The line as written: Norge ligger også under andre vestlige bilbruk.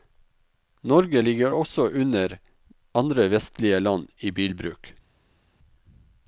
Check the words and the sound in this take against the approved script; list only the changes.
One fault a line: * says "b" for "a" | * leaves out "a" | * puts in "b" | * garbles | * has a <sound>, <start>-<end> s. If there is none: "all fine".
* puts in "land i"